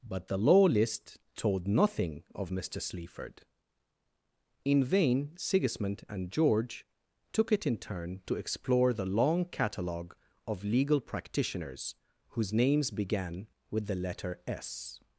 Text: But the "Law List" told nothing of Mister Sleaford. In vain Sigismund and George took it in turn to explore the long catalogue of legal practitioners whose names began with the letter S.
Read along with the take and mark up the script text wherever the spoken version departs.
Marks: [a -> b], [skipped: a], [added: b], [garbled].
But the "Law List" told nothing of Mister Sleaford. In vain Sigismund and George took it in turn to explore the long catalogue of legal practitioners whose names began with the letter S.